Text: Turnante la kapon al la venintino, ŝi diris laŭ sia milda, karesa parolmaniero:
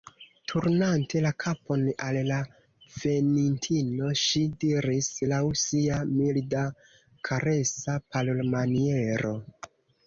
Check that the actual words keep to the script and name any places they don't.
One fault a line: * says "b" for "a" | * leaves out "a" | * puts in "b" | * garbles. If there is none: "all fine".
all fine